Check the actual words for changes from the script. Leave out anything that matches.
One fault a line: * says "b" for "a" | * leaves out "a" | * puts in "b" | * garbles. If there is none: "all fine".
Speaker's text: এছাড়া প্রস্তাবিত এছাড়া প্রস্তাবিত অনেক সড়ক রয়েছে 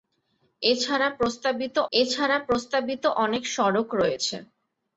all fine